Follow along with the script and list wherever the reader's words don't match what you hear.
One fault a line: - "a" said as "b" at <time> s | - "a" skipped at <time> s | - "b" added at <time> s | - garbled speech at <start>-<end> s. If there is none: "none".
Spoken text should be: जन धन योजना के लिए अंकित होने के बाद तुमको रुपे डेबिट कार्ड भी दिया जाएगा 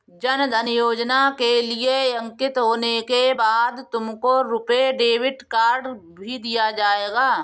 none